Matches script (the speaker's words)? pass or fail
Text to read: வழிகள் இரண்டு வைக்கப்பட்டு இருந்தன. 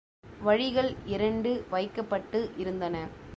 pass